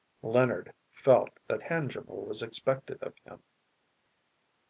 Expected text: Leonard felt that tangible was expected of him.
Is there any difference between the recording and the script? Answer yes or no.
no